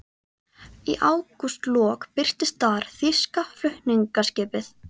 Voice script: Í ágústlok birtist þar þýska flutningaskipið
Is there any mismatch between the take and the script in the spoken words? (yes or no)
no